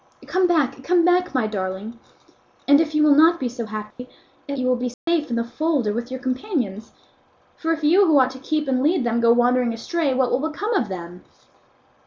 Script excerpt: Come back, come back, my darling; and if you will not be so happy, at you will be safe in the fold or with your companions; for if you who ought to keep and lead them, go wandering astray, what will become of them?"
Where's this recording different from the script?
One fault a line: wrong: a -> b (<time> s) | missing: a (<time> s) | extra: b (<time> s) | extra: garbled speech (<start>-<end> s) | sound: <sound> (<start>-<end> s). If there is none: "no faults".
sound: dropout (3.9-4.0 s)
sound: dropout (4.9-5.1 s)